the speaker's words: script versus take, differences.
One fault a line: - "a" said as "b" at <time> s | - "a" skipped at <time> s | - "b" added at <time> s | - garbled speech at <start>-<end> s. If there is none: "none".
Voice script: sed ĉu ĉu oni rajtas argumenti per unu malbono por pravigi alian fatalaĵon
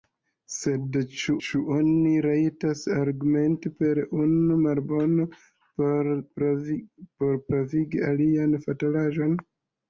none